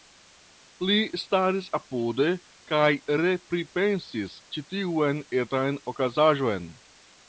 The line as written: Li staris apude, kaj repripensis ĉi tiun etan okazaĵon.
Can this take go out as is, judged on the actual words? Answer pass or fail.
pass